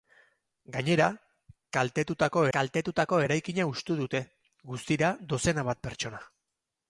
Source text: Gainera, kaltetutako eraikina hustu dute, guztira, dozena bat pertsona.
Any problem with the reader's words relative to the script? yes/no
yes